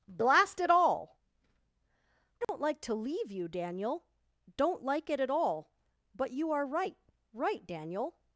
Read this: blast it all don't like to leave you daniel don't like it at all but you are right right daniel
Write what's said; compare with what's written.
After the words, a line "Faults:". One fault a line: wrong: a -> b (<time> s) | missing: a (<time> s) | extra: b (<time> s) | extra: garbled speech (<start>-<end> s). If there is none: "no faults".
blast it all don't like to leave you daniel don't like it at all but you are right right daniel
Faults:
no faults